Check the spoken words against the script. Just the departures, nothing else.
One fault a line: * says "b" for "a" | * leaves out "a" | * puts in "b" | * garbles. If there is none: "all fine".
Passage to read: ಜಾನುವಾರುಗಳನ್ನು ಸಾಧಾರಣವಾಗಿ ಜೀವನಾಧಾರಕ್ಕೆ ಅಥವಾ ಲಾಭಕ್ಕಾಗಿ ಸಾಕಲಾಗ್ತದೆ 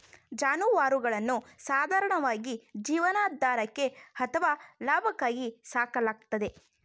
all fine